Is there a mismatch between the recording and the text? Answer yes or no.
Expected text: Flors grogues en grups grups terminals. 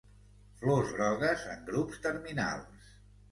yes